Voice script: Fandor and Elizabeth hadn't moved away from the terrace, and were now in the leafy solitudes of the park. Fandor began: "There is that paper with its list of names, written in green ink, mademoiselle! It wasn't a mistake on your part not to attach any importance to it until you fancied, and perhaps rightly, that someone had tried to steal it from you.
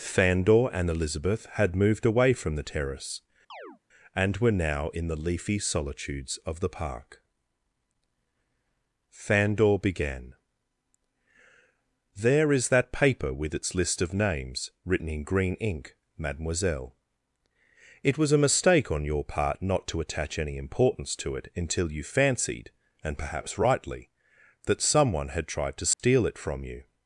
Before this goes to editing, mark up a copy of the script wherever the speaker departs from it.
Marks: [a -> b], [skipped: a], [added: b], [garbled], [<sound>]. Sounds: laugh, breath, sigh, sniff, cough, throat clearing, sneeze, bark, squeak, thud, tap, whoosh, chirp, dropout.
Fandor and Elizabeth [hadn't -> had] moved away from the terrace, [chirp] and were now in the leafy solitudes of the park. Fandor began: "There is that paper with its list of names, written in green ink, mademoiselle! It [wasn't -> was] a mistake on your part not to attach any importance to it until you fancied, and perhaps rightly, that someone had tried to steal [dropout] it from you.